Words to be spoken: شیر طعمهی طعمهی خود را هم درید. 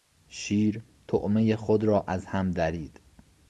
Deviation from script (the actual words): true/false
true